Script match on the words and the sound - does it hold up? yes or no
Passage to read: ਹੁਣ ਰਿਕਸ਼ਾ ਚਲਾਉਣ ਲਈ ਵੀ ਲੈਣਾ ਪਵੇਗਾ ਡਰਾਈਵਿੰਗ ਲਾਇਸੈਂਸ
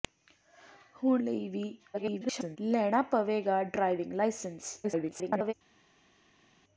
no